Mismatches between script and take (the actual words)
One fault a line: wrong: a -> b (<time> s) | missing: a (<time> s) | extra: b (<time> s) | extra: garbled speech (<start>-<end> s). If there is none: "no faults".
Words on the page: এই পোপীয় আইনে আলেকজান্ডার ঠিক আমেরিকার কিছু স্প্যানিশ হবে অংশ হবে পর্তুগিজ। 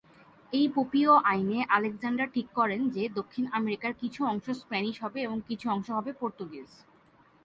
extra: করেন যে দক্ষিণ (2.5 s)
extra: অংশ (4.2 s)
extra: এবং কিছু (5.2 s)